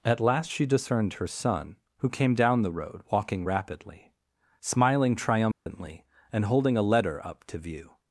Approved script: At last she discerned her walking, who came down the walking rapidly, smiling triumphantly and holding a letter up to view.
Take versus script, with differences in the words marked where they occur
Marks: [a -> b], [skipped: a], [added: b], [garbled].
At last she discerned her [walking, -> son] who came down the [added: road] walking rapidly, smiling triumphantly and holding a letter up to view.